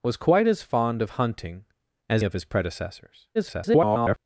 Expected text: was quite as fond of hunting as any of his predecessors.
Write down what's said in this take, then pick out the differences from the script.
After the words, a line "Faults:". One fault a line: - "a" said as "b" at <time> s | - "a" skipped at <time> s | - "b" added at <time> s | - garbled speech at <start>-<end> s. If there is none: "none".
was quite as fond of hunting as of his predecessors. [garbled]
Faults:
- "any" skipped at 2.2 s
- garbled speech at 3.3-4.2 s